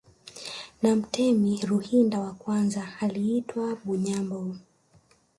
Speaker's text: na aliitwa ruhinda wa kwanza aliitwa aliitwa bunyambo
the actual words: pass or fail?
fail